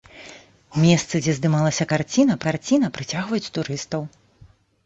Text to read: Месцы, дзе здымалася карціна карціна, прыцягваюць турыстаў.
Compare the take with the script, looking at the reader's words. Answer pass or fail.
pass